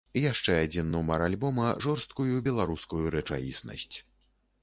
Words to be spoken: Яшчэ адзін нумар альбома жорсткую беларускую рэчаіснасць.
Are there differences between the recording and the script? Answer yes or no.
no